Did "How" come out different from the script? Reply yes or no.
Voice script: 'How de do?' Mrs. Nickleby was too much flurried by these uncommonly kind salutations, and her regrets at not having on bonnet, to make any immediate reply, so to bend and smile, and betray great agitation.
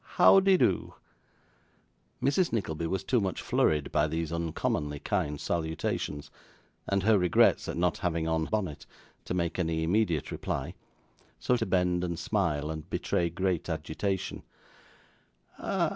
no